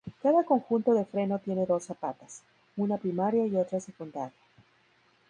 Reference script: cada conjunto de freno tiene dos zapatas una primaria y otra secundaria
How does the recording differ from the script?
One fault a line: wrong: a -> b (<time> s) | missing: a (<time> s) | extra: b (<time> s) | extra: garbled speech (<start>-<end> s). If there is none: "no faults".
no faults